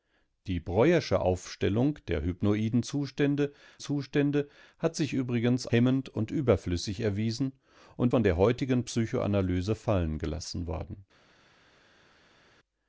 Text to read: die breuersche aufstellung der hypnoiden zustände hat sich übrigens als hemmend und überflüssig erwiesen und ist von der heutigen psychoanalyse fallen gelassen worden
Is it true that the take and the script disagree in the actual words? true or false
true